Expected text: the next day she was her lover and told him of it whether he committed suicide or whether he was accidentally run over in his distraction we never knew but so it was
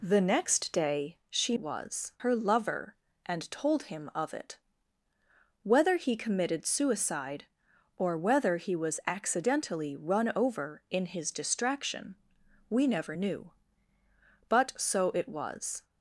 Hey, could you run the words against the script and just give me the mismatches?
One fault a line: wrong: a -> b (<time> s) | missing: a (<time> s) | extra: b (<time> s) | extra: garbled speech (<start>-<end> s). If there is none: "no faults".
no faults